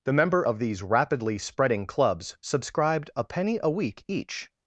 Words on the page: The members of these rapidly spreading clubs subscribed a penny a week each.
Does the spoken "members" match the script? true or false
false